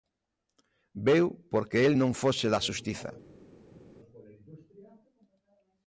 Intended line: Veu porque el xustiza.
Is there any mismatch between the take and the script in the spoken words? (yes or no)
yes